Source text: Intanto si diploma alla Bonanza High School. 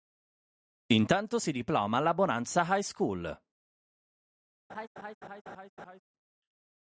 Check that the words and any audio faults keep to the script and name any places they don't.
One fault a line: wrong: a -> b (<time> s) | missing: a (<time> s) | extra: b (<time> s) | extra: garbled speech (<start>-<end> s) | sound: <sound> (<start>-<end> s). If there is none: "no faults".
sound: laugh (4.7-6.0 s)